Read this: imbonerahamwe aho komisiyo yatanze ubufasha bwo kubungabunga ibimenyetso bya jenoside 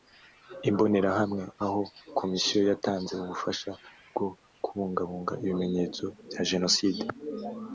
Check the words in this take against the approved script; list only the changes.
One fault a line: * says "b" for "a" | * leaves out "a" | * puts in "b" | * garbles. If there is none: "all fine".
all fine